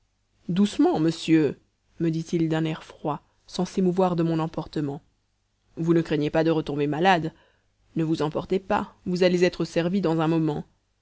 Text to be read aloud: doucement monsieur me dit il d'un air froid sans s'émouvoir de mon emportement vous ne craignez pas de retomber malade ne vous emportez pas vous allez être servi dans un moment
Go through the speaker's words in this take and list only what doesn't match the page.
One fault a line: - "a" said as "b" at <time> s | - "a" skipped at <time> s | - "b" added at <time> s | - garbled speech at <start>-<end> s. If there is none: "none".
none